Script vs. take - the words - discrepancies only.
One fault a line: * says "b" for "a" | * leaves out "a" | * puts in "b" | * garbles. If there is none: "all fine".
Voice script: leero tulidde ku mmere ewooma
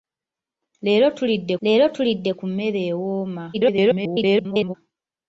* puts in "leero tulidde"
* garbles